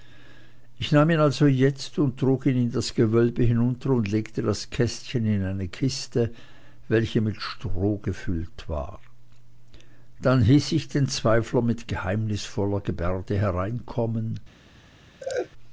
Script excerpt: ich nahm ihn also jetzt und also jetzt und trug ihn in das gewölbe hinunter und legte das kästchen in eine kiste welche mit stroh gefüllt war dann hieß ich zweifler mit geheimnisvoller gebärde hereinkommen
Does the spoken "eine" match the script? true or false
true